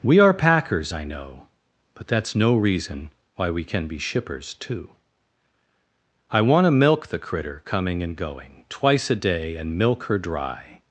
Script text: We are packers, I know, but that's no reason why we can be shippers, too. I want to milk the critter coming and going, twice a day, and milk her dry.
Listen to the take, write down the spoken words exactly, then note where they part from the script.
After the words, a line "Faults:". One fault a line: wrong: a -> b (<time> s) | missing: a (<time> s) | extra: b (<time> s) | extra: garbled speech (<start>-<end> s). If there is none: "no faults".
We are packers, I know, but that's no reason why we can be shippers, too. I want to milk the critter coming and going, twice a day, and milk her dry.
Faults:
no faults